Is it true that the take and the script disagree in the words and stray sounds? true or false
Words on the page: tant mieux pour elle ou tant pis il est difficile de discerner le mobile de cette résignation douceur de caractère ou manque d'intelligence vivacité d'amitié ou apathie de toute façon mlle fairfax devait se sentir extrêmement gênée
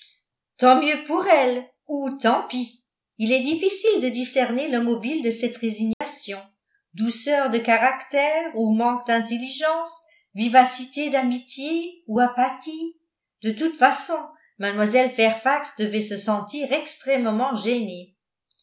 true